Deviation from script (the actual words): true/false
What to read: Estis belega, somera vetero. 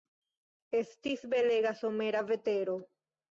false